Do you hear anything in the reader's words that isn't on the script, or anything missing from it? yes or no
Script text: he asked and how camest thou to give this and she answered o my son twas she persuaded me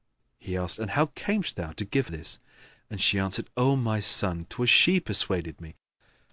no